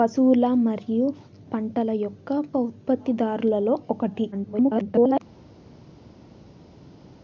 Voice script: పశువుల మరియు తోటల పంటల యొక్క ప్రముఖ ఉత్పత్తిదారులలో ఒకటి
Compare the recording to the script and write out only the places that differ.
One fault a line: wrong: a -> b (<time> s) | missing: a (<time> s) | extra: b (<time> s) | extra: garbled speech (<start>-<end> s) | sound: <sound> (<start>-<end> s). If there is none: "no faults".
missing: తోటల (1.1 s)
missing: ప్రముఖ (2.3 s)
extra: garbled speech (4.3-5.2 s)